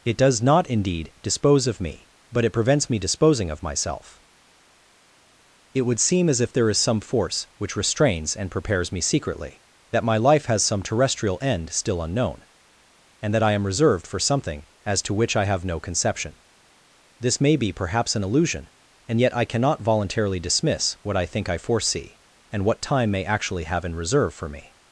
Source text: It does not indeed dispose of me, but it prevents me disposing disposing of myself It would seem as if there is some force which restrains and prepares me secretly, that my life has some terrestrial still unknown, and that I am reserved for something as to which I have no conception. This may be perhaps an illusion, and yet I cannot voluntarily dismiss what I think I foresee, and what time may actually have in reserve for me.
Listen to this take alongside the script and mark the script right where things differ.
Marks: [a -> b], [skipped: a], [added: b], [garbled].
It does not indeed dispose of me, but it prevents me disposing [skipped: disposing] of myself It would seem as if there is some force which restrains and prepares me secretly, that my life has some terrestrial [added: end] still unknown, and that I am reserved for something as to which I have no conception. This may be perhaps an illusion, and yet I cannot voluntarily dismiss what I think I foresee, and what time may actually have in reserve for me.